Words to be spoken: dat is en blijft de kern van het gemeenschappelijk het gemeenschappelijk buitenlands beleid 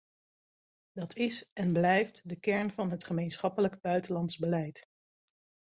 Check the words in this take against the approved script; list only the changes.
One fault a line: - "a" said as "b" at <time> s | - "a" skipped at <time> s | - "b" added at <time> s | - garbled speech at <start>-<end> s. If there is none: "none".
- "het gemeenschappelijk" skipped at 3.8 s